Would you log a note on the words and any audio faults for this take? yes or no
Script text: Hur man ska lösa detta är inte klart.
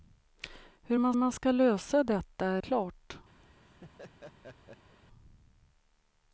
yes